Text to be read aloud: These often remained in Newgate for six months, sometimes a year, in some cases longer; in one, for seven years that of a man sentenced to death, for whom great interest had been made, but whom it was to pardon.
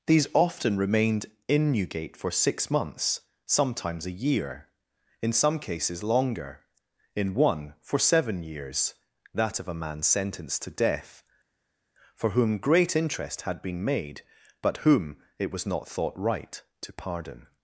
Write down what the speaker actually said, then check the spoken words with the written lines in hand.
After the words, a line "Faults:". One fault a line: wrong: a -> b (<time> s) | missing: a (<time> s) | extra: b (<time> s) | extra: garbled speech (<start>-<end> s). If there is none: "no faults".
These often remained in Newgate for six months, sometimes a year, in some cases longer; in one, for seven years that of a man sentenced to death, for whom great interest had been made, but whom it was not thought right to pardon.
Faults:
extra: not thought right (15.6 s)